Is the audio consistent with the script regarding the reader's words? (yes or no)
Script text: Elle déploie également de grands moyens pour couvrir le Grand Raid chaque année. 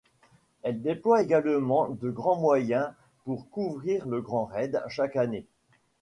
yes